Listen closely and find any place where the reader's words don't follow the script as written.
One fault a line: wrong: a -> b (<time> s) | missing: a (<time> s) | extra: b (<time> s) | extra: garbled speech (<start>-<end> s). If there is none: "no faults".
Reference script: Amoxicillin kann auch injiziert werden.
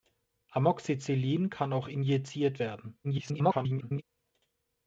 extra: garbled speech (3.0-4.0 s)